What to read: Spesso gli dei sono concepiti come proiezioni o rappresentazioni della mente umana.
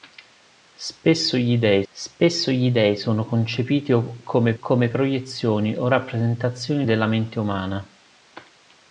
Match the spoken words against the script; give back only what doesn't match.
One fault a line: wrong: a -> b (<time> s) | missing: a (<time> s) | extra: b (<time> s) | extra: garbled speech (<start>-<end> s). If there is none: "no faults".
extra: spesso gli dei (1.9 s)
extra: come (4.6 s)